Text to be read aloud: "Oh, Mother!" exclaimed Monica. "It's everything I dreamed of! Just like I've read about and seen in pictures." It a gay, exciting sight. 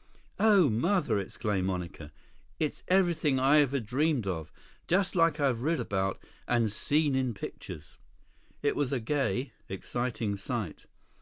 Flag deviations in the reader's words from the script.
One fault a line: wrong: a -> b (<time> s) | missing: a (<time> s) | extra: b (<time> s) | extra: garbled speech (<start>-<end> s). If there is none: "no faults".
extra: ever (3.6 s)
extra: was (8.8 s)